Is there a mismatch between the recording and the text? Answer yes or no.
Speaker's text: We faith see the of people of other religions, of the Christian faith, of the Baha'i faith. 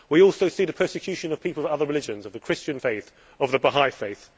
yes